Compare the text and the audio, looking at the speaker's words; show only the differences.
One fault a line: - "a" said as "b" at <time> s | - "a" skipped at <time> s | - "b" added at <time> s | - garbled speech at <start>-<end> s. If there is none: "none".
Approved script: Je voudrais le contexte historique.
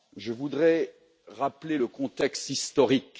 - "rappeler" added at 1.3 s